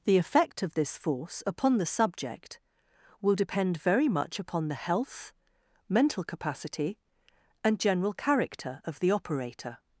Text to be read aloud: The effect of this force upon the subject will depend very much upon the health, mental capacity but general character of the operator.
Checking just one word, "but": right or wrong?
wrong